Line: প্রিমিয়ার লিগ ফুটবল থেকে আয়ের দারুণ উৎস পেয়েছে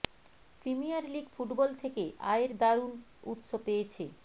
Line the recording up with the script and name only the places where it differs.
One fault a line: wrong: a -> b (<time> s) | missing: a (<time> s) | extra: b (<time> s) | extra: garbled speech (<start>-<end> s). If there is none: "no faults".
no faults